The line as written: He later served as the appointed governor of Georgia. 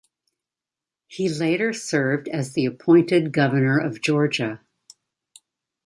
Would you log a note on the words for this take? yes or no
no